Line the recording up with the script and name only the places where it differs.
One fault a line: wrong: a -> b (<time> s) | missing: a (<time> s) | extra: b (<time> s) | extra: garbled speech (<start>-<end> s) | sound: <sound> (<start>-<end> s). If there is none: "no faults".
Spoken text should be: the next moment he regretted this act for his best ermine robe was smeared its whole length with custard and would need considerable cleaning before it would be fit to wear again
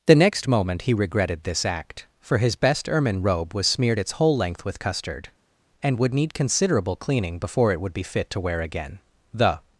extra: the (9.3 s)